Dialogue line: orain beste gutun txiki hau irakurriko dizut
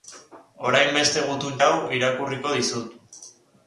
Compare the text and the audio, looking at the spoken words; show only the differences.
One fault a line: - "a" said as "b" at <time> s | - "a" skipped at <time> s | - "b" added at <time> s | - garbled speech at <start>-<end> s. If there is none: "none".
- "txiki" skipped at 1.6 s